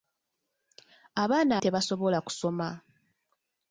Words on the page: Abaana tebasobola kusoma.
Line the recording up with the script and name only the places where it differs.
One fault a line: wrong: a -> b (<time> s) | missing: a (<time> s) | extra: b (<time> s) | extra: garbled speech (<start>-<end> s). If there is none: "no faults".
no faults